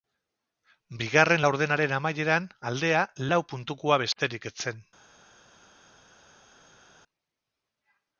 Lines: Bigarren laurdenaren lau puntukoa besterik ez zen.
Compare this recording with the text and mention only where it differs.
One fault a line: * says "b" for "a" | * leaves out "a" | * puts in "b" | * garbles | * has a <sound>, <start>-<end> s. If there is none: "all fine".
* puts in "amaieran aldea"